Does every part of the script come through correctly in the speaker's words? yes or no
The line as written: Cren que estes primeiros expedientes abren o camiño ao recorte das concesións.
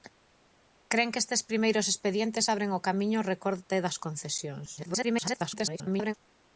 no